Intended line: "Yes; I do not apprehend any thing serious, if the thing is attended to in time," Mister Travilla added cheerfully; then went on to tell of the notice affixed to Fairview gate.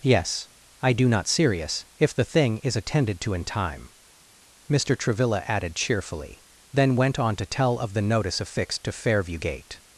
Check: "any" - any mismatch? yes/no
yes